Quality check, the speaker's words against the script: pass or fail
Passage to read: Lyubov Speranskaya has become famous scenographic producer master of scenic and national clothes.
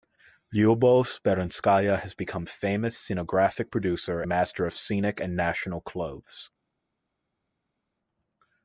pass